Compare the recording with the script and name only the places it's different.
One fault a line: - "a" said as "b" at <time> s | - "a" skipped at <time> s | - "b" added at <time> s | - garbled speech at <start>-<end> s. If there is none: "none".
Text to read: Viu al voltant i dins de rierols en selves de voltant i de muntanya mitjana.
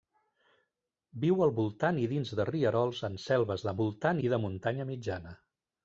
none